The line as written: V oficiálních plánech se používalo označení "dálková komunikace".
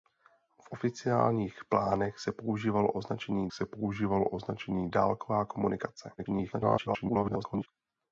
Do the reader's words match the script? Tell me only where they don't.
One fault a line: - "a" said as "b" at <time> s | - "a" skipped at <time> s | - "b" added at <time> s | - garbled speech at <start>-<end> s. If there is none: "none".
- "se používalo označení" added at 3.5 s
- garbled speech at 6.2-7.7 s